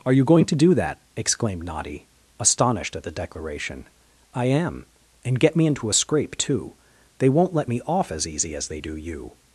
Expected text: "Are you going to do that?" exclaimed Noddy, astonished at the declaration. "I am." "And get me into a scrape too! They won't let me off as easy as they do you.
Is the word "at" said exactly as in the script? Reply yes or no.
yes